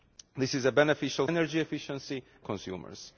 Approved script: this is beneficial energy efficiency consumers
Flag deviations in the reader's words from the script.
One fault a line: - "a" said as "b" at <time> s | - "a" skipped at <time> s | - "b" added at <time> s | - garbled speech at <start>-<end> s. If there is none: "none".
none